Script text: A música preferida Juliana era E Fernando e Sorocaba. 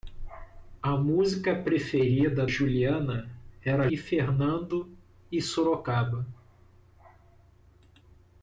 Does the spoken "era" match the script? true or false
true